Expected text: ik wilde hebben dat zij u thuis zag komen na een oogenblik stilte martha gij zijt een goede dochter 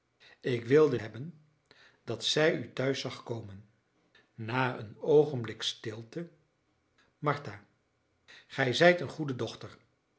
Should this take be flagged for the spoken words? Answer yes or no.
no